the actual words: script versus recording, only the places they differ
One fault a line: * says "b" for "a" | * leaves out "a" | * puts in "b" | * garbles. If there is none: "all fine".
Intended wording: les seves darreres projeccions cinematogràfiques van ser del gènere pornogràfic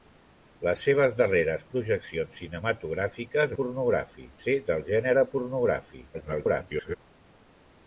* says "pornogràfic" for "van"
* garbles